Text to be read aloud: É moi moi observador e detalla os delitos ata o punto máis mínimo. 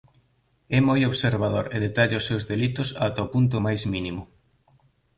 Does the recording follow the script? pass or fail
fail